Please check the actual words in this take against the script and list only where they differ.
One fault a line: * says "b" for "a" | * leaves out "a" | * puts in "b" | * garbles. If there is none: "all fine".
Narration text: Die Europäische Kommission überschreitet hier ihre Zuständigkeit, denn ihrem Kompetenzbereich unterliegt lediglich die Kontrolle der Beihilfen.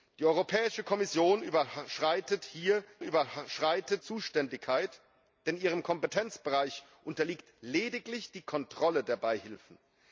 * says "überschreitet" for "ihre"